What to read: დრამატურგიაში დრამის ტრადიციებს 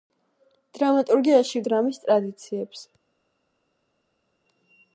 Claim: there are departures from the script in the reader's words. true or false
false